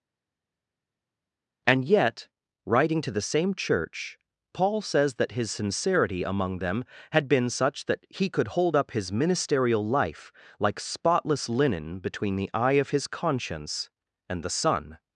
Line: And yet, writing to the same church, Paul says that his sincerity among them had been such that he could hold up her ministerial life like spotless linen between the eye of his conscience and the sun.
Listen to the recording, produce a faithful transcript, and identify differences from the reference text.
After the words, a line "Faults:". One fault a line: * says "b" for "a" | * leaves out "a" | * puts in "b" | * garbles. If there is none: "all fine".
And yet, writing to the same church, Paul says that his sincerity among them had been such that he could hold up his ministerial life like spotless linen between the eye of his conscience and the sun.
Faults:
* says "his" for "her"